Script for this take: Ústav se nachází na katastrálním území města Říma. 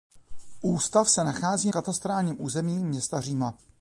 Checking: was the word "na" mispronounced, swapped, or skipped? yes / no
yes